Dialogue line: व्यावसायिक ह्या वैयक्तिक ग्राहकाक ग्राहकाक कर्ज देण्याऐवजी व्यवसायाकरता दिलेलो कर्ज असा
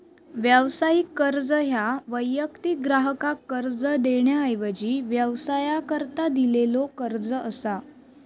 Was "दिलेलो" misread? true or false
false